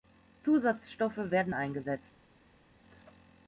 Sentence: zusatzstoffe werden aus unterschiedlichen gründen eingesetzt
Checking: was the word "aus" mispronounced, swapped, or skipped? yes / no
yes